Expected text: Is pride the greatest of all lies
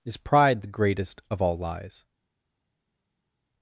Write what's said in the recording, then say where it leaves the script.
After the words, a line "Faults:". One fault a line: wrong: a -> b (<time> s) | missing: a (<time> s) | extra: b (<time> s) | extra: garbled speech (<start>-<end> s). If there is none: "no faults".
Is pride the greatest of all lies
Faults:
no faults